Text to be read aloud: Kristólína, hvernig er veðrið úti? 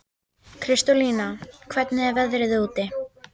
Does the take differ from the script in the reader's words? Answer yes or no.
no